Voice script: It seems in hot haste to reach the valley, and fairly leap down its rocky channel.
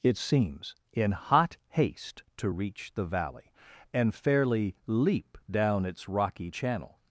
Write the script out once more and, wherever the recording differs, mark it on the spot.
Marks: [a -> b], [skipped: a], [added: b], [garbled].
It seems in hot haste to reach the valley, and fairly leap down its rocky channel.